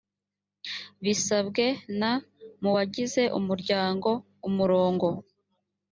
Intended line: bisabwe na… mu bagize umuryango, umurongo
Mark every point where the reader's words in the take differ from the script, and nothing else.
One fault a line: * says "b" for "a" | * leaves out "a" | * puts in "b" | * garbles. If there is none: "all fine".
all fine